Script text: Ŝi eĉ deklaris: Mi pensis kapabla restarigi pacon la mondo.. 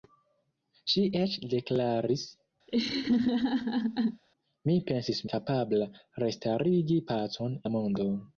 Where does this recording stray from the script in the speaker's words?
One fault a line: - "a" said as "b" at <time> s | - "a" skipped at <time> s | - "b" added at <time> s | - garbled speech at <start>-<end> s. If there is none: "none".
none